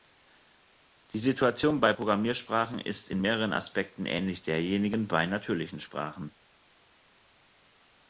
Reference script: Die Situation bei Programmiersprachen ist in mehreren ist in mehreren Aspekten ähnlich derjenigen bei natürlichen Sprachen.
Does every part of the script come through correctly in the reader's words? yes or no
no